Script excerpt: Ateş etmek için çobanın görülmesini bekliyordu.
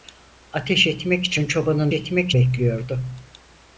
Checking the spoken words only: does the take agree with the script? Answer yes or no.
no